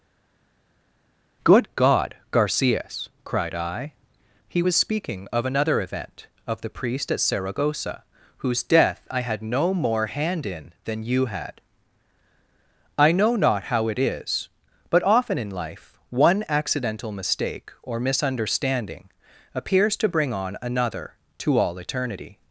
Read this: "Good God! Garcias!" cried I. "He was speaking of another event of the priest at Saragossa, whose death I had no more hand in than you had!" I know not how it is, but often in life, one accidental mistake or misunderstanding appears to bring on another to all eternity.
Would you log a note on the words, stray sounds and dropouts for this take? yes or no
no